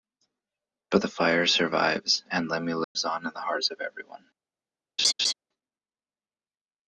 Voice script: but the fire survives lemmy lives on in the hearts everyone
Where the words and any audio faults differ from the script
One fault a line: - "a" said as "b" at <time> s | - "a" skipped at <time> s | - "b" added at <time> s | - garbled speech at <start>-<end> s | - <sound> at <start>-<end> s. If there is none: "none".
- "and" added at 2.3 s
- dropout at 2.8-3.0 s
- "of" added at 3.7 s
- laugh at 5.0-5.3 s